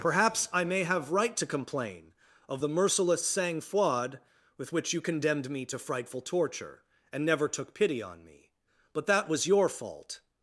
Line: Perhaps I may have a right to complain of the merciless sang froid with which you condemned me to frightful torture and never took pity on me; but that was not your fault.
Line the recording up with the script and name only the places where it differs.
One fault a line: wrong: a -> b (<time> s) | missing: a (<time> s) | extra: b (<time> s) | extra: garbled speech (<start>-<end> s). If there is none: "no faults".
missing: a (1.1 s)
missing: not (9.4 s)